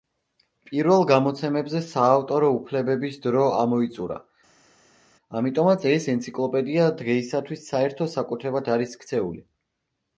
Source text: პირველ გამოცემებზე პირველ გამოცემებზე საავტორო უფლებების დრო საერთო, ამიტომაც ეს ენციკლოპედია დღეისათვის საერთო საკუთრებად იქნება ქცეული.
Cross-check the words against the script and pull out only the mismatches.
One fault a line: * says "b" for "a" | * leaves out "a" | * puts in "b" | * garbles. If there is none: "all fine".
* leaves out "პირველ გამოცემებზე"
* says "ამოიწურა" for "საერთო"
* says "არის" for "იქნება"